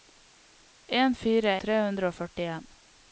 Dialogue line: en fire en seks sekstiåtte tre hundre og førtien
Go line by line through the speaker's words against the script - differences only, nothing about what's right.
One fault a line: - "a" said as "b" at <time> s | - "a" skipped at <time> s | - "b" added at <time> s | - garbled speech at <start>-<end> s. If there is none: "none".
- "en seks sekstiåtte" skipped at 1.5 s